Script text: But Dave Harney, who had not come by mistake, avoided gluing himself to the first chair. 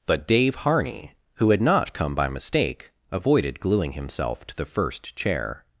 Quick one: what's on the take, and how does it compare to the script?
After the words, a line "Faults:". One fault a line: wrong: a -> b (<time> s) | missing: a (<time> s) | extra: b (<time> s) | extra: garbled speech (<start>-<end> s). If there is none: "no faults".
But Dave Harney, who had not come by mistake, avoided gluing himself to the first chair.
Faults:
no faults